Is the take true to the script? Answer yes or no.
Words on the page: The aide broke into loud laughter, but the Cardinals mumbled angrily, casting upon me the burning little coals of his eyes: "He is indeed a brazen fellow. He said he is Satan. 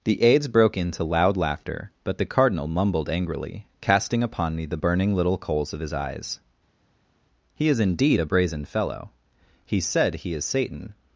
no